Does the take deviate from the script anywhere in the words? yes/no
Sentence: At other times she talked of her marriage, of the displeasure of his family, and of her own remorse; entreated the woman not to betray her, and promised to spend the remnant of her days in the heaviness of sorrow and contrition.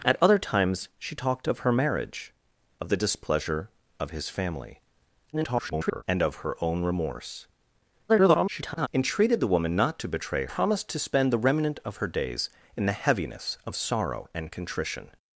yes